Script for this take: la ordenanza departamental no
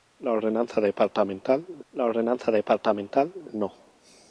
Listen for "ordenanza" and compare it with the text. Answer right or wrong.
right